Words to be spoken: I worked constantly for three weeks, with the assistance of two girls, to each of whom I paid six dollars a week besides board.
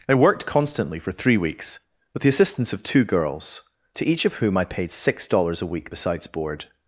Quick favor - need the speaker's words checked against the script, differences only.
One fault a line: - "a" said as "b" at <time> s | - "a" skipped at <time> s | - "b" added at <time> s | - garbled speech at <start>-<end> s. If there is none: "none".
none